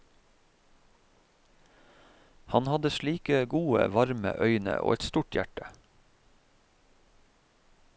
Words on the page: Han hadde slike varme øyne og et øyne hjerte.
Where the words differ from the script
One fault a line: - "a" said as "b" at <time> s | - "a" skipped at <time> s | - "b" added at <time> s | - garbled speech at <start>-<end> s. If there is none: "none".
- "gode" added at 3.5 s
- "øyne" said as "stort" at 5.0 s